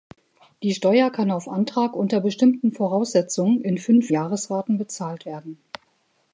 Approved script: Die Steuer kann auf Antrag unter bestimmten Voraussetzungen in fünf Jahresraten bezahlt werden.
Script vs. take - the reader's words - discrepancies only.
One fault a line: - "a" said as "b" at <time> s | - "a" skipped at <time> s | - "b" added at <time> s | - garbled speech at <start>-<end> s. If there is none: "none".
none